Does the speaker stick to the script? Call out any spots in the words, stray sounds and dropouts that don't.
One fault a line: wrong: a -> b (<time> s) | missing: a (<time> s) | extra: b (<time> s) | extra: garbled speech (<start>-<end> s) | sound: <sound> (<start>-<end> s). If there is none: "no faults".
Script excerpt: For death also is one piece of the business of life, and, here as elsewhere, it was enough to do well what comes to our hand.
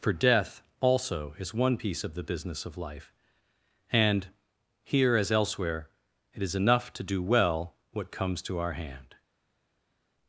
wrong: was -> is (6.4 s)